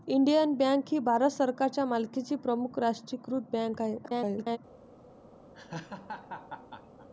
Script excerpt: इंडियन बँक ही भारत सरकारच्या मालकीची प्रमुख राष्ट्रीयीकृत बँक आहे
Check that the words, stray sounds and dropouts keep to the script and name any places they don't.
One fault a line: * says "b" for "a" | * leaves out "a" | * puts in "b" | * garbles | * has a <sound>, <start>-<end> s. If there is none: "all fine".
* garbles
* has a laugh, 5.5-7.1 s